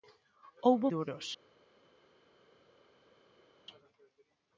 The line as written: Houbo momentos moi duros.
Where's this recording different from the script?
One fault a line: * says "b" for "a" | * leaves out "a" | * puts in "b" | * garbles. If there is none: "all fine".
* leaves out "momentos moi"